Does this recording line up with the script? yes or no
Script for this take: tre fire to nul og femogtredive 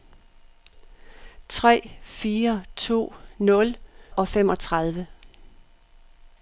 yes